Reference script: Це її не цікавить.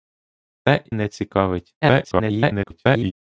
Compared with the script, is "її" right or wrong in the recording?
wrong